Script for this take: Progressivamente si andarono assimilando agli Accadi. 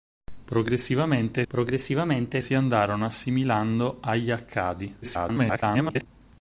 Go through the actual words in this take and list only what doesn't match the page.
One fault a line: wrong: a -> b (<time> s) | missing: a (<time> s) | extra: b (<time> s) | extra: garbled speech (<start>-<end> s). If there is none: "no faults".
extra: progressivamente (1.5 s)
extra: garbled speech (5.0-6.1 s)